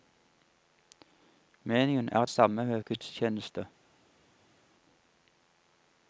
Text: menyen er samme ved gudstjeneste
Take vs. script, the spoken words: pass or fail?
pass